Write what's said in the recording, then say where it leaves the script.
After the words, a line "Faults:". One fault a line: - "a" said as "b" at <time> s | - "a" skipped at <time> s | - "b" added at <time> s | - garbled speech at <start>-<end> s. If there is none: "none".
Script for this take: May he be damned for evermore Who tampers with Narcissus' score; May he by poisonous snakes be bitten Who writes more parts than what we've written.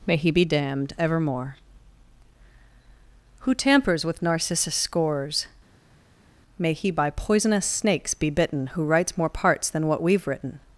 May he be damned evermore Who tampers with Narcissus' scores; May he by poisonous snakes be bitten Who writes more parts than what we've written.
Faults:
- "for" skipped at 0.9 s
- "score" said as "scores" at 4.8 s